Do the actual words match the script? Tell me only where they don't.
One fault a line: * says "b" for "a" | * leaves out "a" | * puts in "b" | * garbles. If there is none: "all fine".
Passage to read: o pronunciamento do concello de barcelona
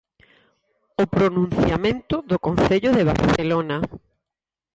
all fine